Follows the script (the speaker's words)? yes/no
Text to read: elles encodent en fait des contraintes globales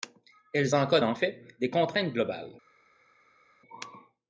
yes